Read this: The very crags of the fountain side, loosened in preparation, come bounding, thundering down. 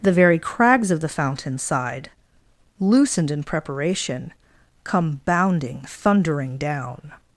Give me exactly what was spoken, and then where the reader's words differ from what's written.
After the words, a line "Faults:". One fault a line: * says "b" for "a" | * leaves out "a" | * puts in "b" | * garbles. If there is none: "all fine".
The very crags of the fountain side, loosened in preparation, come bounding, thundering down.
Faults:
all fine